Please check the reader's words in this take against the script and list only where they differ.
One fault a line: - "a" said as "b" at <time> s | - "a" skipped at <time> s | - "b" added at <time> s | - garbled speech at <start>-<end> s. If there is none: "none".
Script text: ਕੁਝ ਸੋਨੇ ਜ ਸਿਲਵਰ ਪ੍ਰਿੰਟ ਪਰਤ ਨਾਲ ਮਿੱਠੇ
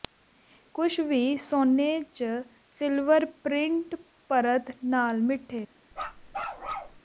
- "ਵੀ" added at 1.0 s